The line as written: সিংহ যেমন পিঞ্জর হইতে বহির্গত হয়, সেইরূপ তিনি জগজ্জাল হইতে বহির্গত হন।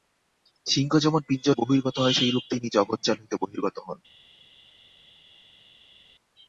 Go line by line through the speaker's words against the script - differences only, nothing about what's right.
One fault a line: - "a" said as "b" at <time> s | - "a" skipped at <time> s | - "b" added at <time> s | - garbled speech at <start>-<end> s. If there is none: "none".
- "হইতে" skipped at 1.6 s